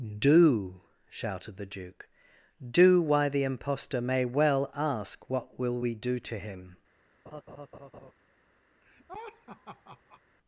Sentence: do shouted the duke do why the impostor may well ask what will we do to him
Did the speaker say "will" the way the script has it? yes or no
yes